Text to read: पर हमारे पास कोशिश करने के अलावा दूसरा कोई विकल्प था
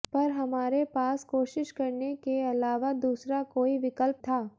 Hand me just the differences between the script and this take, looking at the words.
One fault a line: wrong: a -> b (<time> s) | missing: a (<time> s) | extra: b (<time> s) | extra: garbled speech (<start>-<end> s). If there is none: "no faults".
no faults